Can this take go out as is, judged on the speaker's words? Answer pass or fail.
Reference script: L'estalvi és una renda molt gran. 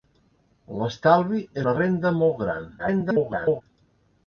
fail